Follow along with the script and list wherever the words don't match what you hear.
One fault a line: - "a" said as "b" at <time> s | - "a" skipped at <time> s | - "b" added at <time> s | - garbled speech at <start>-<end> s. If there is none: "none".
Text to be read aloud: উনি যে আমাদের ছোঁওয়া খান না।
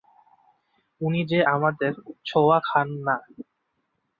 none